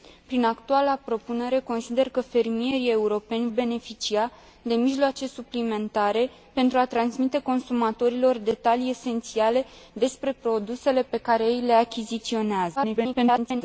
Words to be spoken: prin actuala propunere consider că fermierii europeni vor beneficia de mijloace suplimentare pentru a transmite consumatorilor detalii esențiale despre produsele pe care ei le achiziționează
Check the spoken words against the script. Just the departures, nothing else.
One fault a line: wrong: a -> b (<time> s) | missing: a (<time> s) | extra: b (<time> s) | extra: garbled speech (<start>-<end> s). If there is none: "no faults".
missing: vor (3.5 s)
extra: garbled speech (12.8-13.6 s)